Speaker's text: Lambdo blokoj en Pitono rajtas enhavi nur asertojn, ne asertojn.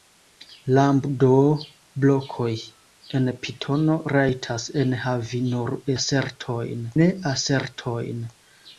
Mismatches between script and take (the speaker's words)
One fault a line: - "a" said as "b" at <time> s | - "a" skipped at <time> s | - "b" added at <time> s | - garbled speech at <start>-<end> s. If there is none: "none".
none